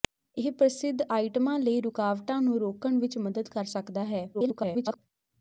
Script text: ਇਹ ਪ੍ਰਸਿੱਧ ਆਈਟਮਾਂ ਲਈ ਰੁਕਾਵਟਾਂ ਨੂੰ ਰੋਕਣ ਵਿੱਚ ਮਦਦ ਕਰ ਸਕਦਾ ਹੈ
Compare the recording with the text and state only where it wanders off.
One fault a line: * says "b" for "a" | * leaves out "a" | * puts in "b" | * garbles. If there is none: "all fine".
* garbles